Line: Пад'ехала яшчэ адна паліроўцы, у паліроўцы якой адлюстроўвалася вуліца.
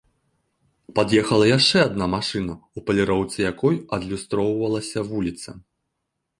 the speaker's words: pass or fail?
fail